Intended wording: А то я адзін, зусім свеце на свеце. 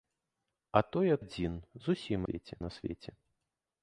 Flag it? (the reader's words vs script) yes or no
no